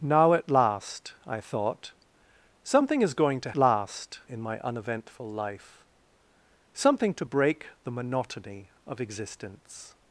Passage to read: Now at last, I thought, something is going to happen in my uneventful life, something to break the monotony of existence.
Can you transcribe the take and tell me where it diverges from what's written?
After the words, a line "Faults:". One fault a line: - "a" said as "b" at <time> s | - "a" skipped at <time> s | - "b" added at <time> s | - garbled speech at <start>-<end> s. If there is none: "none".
Now at last, I thought, something is going to last in my uneventful life, something to break the monotony of existence.
Faults:
- "happen" said as "last" at 3.6 s